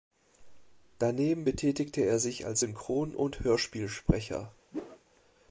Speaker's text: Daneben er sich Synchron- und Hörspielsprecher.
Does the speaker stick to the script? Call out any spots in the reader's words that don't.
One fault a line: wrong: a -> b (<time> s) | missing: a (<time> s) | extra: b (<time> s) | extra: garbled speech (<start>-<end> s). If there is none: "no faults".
extra: betätigte (1.4 s)
extra: als (2.5 s)